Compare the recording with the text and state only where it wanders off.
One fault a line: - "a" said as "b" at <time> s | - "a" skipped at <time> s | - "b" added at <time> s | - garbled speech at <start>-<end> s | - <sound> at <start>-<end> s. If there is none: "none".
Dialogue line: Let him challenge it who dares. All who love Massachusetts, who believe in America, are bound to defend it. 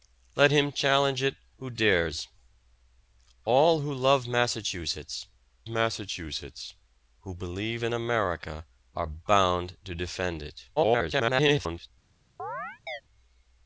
- "Massachusetts" added at 5.7 s
- garbled speech at 10.8-11.9 s
- chirp at 12.4-13.0 s